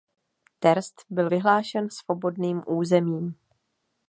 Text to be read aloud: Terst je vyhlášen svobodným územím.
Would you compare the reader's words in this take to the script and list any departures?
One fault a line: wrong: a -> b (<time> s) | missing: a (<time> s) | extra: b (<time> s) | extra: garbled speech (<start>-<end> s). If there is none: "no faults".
wrong: je -> byl (1.1 s)